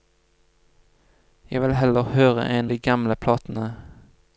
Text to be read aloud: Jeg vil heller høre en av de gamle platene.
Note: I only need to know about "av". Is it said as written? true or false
false